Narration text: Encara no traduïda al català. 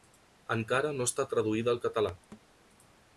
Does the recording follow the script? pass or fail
fail